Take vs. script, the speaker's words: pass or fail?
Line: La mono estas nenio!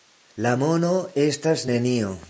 pass